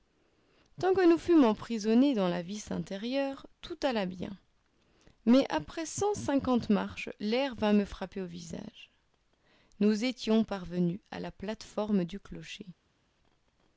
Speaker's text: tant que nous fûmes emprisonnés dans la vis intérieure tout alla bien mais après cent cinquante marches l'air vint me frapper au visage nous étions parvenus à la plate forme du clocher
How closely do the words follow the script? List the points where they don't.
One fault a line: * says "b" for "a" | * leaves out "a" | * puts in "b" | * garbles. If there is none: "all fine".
all fine